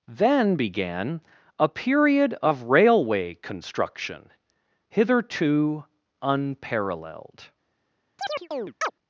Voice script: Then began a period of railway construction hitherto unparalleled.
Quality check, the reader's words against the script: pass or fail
pass